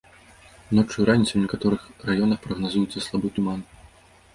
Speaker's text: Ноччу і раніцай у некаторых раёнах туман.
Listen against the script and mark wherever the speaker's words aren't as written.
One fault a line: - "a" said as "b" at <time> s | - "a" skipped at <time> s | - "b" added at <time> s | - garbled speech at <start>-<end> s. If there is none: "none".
- "прагназуецца слабы" added at 2.5 s